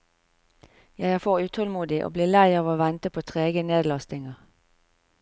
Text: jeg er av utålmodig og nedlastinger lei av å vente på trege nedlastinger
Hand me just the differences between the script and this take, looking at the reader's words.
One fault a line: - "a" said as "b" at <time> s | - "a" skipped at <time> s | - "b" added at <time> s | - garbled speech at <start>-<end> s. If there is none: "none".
- "av" said as "for" at 1.1 s
- "nedlastinger" said as "blir" at 2.1 s